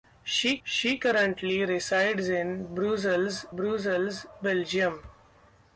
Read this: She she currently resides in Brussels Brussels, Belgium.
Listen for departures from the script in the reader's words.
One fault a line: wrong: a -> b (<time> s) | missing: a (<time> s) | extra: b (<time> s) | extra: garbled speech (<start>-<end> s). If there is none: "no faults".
no faults